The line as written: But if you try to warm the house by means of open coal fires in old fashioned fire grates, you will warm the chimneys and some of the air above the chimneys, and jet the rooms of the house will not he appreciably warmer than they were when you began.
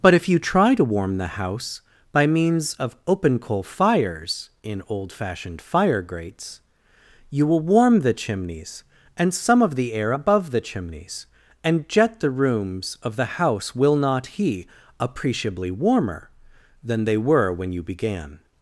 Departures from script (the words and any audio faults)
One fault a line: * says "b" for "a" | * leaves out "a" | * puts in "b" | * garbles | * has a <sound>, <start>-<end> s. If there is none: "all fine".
all fine